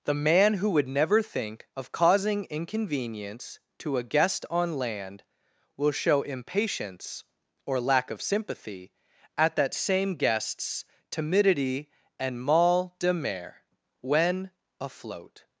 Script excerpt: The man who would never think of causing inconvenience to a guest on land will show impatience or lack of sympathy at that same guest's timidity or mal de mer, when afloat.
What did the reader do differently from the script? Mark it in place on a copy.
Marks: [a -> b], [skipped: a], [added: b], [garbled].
The man who would never think of causing inconvenience to a guest on land will show impatience or lack of sympathy at that same guest's timidity [or -> and] mal de mer, when afloat.